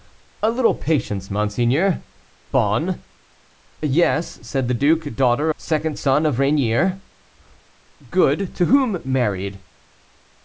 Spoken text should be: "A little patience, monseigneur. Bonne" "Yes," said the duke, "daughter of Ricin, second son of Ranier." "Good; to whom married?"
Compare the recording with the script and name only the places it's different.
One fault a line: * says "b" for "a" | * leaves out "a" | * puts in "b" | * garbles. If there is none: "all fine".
* leaves out "of Ricin"